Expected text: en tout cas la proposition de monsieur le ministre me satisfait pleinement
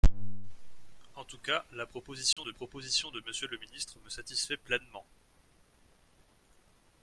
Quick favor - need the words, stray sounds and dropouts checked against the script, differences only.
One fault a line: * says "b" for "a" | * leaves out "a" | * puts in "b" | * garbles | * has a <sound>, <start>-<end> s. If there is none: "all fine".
* has a dropout, 2.3-2.4 s
* puts in "proposition de"